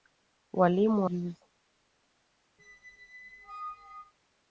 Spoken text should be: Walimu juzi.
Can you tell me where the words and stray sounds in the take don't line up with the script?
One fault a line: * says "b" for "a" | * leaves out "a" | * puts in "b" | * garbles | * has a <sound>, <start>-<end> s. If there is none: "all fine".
* has a squeak, 2.6-4.1 s